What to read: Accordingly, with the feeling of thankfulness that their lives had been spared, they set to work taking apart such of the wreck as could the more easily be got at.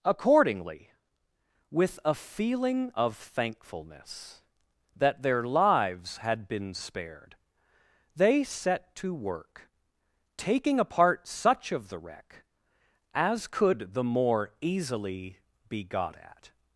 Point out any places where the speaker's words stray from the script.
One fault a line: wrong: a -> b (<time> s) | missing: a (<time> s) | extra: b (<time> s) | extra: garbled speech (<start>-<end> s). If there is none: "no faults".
wrong: the -> a (2.0 s)